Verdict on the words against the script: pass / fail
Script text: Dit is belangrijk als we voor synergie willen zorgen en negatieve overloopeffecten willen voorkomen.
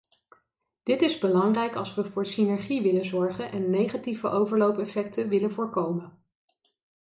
pass